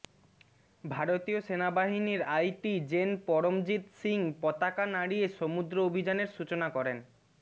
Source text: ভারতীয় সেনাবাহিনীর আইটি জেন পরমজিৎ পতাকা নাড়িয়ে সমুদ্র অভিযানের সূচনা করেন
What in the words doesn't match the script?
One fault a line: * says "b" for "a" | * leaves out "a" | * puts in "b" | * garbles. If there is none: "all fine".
* puts in "সিং"